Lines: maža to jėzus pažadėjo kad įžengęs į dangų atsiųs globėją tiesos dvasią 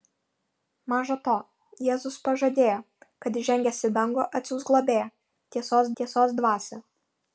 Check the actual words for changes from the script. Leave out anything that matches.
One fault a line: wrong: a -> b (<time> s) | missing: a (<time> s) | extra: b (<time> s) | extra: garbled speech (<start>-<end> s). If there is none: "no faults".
extra: tiesos (6.0 s)